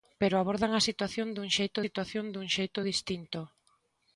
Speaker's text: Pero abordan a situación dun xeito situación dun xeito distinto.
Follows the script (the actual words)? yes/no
yes